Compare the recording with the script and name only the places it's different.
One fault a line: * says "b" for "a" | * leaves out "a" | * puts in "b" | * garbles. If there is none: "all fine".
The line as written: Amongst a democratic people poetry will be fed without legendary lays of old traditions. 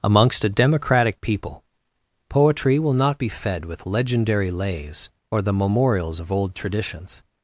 * puts in "not"
* says "with" for "without"
* puts in "or the memorials"